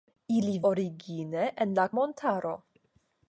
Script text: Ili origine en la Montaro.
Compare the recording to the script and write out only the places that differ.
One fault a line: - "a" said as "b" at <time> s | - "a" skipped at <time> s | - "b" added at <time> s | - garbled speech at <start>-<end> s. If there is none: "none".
none